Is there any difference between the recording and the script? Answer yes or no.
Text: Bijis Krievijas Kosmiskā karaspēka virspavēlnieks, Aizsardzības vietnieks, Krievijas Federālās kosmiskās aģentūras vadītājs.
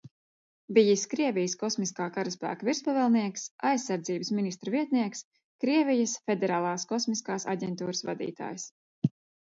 yes